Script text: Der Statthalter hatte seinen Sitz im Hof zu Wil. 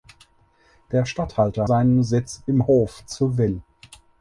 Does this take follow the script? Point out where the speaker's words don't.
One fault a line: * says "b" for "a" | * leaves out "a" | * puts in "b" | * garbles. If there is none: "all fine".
* leaves out "hatte"